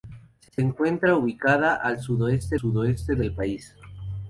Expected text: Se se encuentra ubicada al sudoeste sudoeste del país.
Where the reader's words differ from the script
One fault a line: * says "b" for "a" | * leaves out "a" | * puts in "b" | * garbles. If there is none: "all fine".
all fine